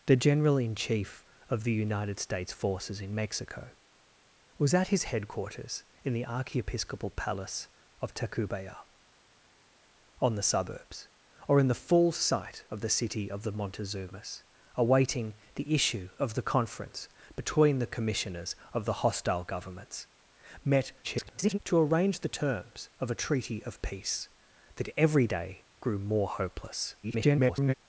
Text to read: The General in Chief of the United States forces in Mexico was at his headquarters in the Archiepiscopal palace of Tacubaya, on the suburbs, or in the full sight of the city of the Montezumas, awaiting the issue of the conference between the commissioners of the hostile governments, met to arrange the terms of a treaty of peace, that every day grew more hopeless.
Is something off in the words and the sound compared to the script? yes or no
yes